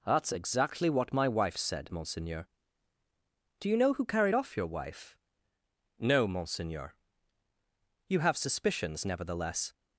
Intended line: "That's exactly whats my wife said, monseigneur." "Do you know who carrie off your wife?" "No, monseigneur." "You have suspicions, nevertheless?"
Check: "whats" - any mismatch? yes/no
yes